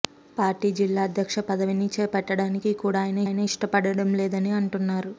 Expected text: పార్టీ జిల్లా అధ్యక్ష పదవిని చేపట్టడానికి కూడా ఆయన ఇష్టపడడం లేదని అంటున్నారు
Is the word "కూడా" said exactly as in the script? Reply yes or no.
yes